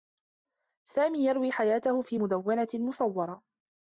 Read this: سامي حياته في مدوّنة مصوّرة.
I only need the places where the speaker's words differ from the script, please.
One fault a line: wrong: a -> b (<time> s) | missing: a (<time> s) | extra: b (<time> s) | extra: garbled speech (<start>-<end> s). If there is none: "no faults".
extra: يروي (1.2 s)